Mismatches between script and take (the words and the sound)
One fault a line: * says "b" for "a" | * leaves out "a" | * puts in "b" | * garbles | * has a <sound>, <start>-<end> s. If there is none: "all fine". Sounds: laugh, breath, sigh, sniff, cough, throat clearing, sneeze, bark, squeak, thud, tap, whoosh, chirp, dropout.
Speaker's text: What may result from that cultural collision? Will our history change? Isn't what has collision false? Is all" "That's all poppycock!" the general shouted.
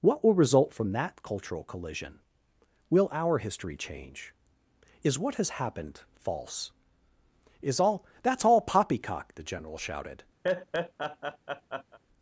* says "will" for "may"
* says "Is" for "Isn't"
* says "happened" for "collision"
* has a laugh, 10.4-12.0 s